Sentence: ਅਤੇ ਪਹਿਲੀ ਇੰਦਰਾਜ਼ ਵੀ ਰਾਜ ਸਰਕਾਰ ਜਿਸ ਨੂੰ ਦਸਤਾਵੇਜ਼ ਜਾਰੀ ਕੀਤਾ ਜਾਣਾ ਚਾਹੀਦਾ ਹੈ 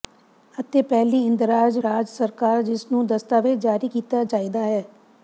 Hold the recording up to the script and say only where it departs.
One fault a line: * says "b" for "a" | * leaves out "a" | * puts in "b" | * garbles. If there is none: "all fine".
* leaves out "ਵੀ"
* leaves out "ਜਾਣਾ"